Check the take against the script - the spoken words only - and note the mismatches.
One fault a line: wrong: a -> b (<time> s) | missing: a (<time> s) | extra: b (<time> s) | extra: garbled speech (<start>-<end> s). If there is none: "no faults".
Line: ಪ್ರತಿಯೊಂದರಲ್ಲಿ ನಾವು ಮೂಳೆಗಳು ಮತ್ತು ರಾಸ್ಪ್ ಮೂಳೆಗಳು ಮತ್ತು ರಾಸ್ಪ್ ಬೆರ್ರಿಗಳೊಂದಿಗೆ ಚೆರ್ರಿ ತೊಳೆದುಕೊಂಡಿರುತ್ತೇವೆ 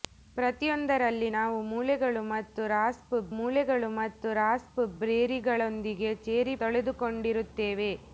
no faults